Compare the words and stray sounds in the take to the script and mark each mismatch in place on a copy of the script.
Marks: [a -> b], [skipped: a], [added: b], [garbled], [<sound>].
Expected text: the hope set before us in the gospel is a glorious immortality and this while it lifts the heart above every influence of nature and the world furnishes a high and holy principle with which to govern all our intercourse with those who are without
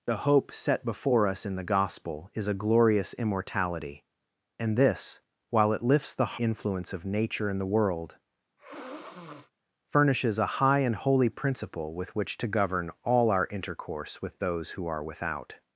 the hope set before us in the gospel is a glorious immortality and this while it lifts the [skipped: heart above every] influence of nature and the world [sniff] furnishes a high and holy principle with which to govern all our intercourse with those who are without